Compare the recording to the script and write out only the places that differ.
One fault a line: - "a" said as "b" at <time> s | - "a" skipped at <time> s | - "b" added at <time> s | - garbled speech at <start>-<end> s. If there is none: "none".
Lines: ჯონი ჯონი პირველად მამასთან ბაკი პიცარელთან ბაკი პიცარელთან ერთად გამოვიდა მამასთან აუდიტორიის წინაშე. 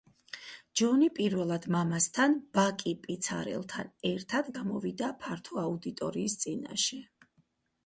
- "ჯონი" skipped at 1.1 s
- "ბაკი პიცარელთან" skipped at 3.9 s
- "მამასთან" said as "ფართო" at 5.3 s